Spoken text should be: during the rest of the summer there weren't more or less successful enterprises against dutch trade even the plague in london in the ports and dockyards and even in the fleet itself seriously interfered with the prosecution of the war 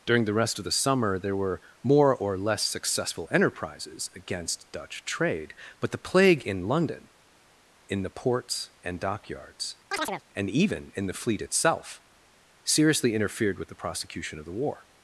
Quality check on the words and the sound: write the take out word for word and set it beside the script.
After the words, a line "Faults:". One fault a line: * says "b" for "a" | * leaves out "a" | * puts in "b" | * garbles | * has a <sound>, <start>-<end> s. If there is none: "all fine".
during the rest of the summer there were more or less successful enterprises against dutch trade but the plague in london in the ports and dockyards and even in the fleet itself seriously interfered with the prosecution of the war
Faults:
* says "were" for "weren't"
* says "but" for "even"
* has a chirp, 9.9-10.2 s